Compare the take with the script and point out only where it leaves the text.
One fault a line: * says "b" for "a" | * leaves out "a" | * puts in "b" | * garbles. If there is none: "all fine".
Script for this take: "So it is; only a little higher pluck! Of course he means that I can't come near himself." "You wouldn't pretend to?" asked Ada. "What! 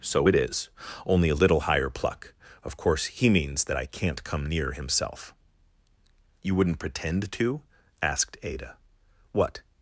all fine